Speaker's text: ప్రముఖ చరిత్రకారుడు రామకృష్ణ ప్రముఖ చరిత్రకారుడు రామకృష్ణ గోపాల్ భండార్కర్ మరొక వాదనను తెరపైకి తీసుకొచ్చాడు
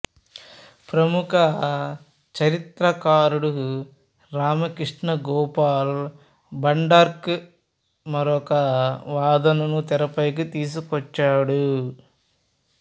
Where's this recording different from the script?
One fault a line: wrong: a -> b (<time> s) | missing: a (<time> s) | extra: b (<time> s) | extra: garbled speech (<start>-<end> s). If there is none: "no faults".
missing: ప్రముఖ చరిత్రకారుడు రామకృష్ణ (5.1 s)